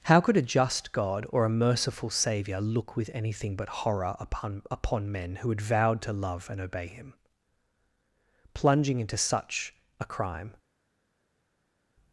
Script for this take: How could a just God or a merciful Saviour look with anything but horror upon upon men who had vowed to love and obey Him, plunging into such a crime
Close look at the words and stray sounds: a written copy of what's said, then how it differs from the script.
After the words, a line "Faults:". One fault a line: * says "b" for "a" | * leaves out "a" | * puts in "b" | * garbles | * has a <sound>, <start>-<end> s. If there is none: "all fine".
How could a just God or a merciful Saviour look with anything but horror upon upon men who had vowed to love and obey Him, plunging into such a crime
Faults:
all fine